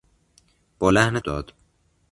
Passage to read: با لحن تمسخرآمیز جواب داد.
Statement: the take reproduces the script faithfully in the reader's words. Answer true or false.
false